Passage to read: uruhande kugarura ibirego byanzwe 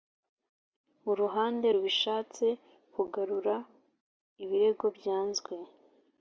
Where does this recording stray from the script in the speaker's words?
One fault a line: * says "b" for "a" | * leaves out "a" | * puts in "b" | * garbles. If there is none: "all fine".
* puts in "rubishatse"